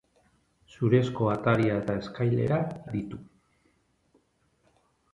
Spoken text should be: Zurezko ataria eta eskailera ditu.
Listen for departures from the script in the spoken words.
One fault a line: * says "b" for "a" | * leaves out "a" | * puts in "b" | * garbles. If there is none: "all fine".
all fine